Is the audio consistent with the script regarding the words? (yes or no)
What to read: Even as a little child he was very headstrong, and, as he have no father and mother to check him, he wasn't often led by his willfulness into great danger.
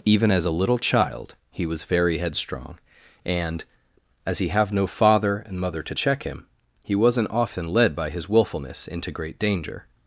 yes